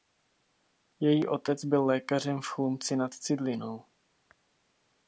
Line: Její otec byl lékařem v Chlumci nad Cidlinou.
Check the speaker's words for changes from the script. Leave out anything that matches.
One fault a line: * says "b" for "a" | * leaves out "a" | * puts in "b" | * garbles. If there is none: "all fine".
all fine